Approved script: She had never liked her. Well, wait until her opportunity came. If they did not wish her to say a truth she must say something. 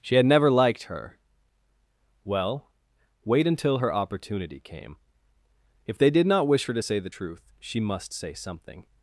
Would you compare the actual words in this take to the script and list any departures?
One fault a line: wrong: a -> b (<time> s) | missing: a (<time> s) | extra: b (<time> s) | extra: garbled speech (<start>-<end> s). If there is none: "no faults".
wrong: a -> the (7.0 s)